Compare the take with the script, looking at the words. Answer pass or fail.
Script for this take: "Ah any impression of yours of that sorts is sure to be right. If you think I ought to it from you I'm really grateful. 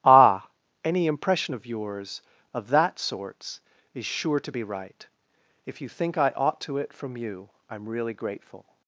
pass